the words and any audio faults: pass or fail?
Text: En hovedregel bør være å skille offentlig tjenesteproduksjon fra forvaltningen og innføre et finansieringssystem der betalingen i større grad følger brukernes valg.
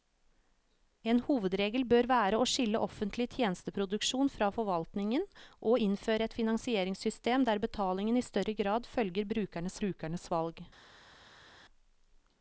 fail